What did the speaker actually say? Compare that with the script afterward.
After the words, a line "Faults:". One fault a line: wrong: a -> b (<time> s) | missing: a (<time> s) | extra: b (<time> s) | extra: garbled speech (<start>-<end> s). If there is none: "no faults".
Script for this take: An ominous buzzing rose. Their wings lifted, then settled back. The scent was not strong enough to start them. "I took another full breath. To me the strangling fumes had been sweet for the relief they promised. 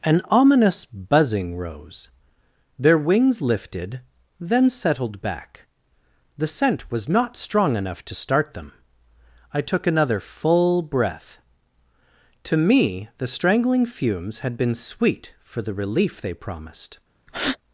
An ominous buzzing rose. Their wings lifted, then settled back. The scent was not strong enough to start them. "I took another full breath. To me the strangling fumes had been sweet for the relief they promised.
Faults:
no faults